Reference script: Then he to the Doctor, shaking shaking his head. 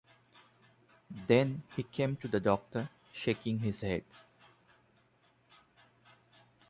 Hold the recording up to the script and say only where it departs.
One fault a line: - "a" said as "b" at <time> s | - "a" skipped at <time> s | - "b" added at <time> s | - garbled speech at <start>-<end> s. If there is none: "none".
- "came" added at 1.8 s
- "shaking" skipped at 3.6 s